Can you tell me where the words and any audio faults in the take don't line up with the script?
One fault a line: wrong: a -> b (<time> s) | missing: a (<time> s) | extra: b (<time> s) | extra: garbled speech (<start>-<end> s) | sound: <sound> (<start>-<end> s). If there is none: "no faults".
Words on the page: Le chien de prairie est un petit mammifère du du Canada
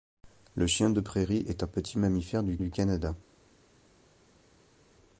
no faults